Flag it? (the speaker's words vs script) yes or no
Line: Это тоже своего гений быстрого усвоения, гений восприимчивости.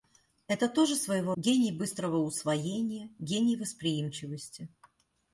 no